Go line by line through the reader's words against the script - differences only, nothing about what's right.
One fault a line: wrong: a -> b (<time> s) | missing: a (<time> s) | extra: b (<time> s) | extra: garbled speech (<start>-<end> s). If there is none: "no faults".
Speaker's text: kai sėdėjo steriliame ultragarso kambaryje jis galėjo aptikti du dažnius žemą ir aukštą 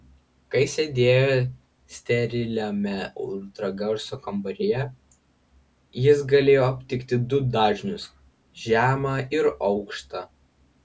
no faults